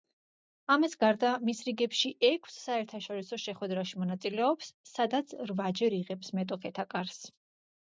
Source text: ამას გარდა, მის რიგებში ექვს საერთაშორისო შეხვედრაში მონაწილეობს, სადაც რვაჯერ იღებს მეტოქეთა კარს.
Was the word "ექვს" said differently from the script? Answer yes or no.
no